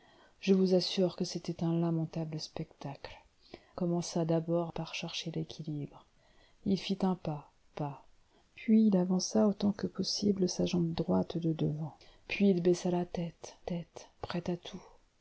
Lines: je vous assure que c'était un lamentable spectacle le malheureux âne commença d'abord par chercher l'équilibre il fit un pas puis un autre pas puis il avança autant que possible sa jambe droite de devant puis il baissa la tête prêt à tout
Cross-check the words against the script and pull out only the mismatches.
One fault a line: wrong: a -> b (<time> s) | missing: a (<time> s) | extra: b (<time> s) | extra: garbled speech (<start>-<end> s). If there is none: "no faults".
missing: le malheureux âne (3.2 s)
missing: puis un autre (7.5 s)
extra: tête (13.6 s)